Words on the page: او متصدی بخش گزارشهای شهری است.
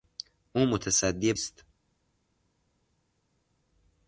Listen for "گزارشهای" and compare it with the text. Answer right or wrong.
wrong